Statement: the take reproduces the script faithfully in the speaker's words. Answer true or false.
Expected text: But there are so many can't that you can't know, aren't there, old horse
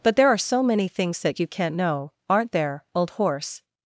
false